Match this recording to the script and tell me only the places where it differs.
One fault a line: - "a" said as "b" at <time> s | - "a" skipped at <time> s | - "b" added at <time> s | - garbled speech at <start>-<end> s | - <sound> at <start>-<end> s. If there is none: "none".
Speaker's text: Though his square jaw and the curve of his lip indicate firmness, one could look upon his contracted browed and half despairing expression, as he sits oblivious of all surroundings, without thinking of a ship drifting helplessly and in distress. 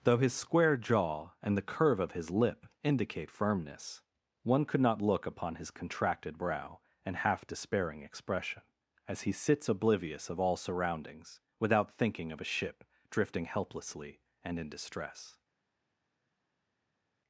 - "not" added at 4.8 s
- "browed" said as "brow" at 6.4 s